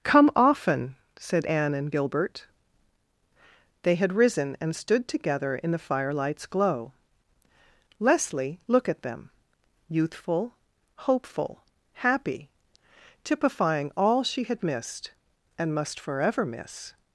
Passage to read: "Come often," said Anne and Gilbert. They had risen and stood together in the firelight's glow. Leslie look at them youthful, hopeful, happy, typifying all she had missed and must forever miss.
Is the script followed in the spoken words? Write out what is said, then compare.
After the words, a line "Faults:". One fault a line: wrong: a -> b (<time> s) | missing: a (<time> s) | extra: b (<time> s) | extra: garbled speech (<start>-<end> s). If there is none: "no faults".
"Come often," said Anne and Gilbert. They had risen and stood together in the firelight's glow. Leslie look at them youthful, hopeful, happy, typifying all she had missed and must forever miss.
Faults:
no faults